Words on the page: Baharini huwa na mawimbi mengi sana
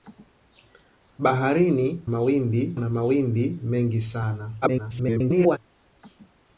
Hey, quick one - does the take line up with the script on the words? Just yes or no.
no